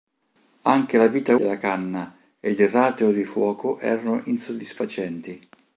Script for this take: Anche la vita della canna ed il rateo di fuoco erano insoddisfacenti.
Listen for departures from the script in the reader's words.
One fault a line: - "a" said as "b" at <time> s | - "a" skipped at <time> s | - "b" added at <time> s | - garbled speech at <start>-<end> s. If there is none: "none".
none